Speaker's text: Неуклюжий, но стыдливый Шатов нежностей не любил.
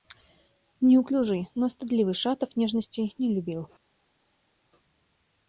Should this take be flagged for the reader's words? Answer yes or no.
no